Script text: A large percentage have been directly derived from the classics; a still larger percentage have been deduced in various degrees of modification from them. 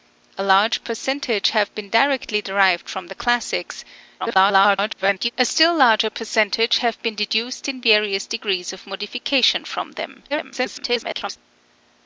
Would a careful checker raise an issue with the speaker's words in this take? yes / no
yes